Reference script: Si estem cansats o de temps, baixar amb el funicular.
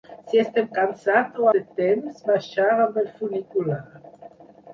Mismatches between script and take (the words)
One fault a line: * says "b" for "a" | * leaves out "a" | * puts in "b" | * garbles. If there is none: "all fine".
all fine